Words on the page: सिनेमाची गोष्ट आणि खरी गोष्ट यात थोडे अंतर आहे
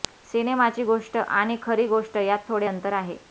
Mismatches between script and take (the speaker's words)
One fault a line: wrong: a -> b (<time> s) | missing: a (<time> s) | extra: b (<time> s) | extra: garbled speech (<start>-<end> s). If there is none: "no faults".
no faults